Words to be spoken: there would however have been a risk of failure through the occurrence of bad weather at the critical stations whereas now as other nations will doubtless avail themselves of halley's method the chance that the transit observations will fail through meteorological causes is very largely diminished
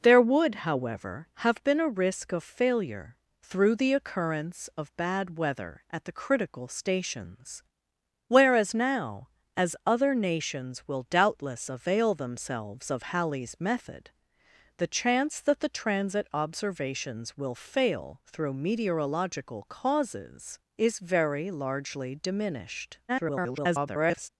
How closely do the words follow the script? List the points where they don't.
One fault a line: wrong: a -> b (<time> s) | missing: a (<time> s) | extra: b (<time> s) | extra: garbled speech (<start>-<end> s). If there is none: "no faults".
extra: garbled speech (23.1-24.3 s)